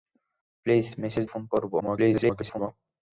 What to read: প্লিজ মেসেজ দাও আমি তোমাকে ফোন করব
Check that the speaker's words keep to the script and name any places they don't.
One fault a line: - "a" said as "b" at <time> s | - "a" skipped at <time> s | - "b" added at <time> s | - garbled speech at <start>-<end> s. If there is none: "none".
- "দাও আমি তোমাকে" skipped at 1.2 s
- garbled speech at 1.8-2.7 s